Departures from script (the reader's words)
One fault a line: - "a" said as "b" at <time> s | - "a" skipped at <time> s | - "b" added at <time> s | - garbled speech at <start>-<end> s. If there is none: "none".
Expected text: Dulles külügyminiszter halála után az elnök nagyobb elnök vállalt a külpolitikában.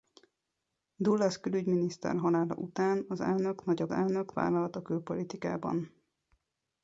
none